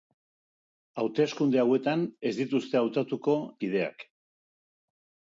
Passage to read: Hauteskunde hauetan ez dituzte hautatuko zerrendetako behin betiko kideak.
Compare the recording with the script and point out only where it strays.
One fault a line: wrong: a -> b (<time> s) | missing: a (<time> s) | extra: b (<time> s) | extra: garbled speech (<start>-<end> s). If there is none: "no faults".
missing: zerrendetako behin betiko (3.4 s)